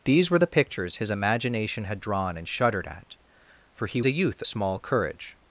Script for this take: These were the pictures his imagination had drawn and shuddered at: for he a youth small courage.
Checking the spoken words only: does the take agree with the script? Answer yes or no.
yes